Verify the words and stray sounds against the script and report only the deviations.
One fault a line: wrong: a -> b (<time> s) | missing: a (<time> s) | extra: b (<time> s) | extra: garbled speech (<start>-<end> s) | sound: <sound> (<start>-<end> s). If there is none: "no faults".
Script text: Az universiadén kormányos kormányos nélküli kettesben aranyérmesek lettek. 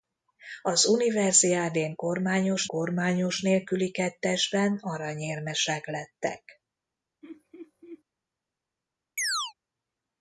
sound: laugh (7.2-8.0 s)
sound: chirp (9.2-9.5 s)